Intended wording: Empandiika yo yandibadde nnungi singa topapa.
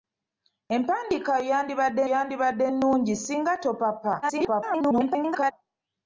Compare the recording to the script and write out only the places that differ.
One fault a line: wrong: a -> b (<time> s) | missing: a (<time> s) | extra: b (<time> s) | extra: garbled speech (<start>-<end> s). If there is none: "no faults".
extra: yandibadde (2.1 s)
extra: garbled speech (4.2-5.5 s)